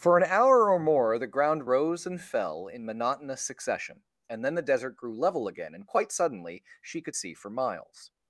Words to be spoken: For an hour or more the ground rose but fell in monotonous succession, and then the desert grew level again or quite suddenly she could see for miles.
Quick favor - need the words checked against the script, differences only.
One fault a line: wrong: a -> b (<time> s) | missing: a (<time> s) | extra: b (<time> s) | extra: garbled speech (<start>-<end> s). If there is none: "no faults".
wrong: but -> and (2.1 s)
wrong: or -> and (5.7 s)